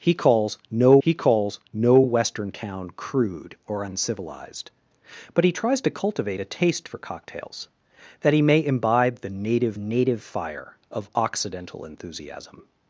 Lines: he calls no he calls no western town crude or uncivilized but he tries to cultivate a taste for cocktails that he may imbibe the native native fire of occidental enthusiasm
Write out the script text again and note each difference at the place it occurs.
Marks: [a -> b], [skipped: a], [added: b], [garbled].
he calls no he calls no western town crude or uncivilized but he tries to cultivate a taste for cocktails that he may imbibe the native native fire of occidental enthusiasm